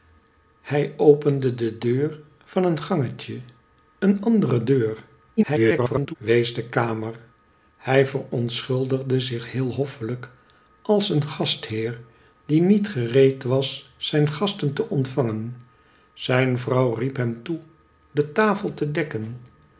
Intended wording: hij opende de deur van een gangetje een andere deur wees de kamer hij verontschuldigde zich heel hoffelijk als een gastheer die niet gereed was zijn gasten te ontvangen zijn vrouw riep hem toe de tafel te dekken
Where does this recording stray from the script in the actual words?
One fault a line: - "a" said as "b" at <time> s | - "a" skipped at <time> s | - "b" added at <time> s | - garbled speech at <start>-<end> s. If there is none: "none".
- garbled speech at 5.4-6.2 s